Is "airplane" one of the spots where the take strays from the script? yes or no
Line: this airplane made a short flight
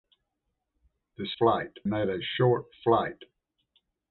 yes